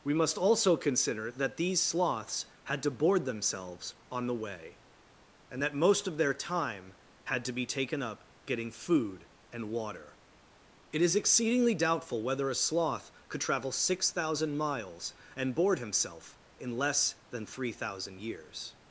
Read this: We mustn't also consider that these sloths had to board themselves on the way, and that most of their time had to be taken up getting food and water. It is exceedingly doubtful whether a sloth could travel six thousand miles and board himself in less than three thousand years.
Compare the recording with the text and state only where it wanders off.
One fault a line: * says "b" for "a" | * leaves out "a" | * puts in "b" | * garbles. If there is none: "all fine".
* says "must" for "mustn't"